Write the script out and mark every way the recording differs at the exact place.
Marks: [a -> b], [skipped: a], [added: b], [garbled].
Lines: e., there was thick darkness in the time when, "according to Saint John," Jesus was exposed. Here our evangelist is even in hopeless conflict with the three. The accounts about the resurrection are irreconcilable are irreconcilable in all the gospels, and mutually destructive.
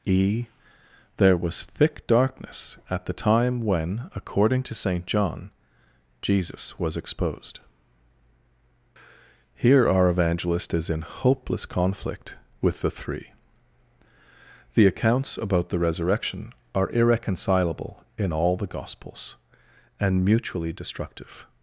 e., there was thick darkness [in -> at] the time when, "according to Saint John," Jesus was exposed. Here our evangelist is [skipped: even] in hopeless conflict with the three. The accounts about the resurrection are irreconcilable [skipped: are irreconcilable] in all the gospels, and mutually destructive.